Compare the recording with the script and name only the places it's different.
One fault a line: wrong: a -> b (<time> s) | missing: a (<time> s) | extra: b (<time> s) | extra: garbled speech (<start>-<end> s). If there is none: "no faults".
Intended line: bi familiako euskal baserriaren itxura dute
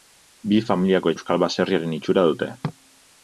no faults